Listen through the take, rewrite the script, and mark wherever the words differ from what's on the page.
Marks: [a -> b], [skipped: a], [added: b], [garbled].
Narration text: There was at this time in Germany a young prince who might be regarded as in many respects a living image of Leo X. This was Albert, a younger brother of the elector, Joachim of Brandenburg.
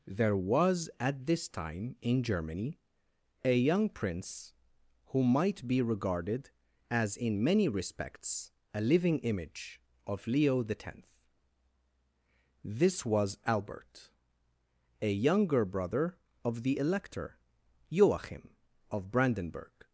There was at this time in Germany a young prince who might be regarded as in many respects a living image of Leo X. This was Albert, a younger brother of the elector, Joachim of Brandenburg.